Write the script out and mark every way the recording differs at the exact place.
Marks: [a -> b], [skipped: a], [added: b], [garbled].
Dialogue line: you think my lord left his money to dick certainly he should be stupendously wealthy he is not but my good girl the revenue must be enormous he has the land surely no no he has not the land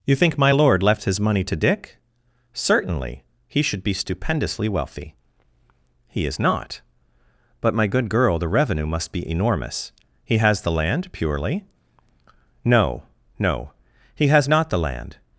you think my lord left his money to dick certainly he should be stupendously wealthy he is not but my good girl the revenue must be enormous he has the land [surely -> purely] no no he has not the land